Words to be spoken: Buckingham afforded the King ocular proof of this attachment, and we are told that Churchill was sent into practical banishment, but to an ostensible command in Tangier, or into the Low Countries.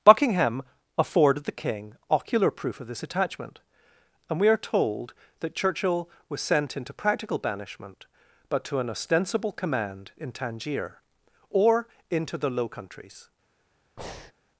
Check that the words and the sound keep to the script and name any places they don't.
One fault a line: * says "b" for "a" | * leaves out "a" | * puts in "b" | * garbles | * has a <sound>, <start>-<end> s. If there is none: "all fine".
* has a breath, 14.0-14.3 s